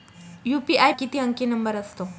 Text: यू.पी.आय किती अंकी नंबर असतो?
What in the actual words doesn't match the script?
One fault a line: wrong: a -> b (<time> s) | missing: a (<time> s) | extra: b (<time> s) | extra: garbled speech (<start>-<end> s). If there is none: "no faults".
no faults